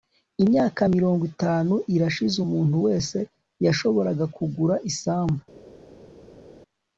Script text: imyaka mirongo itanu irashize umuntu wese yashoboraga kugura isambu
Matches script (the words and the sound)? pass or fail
pass